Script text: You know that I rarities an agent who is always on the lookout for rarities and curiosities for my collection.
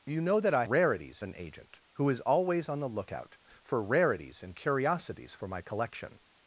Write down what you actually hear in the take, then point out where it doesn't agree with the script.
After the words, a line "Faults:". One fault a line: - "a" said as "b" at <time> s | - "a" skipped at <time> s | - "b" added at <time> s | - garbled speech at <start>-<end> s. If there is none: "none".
You know that I rarities an agent who is always on the lookout for rarities and curiosities for my collection.
Faults:
none